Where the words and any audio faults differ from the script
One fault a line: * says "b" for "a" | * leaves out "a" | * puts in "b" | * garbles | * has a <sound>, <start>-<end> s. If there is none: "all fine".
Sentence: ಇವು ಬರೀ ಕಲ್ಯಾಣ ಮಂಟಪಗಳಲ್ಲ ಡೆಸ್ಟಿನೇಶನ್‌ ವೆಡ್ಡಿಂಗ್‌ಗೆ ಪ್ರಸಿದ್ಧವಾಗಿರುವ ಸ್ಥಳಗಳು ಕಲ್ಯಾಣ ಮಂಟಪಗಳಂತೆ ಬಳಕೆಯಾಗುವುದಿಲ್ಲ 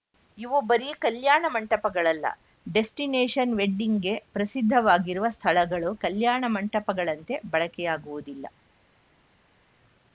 all fine